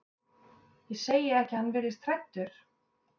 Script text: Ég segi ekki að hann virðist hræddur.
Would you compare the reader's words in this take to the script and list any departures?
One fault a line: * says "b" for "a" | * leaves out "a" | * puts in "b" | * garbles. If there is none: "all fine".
all fine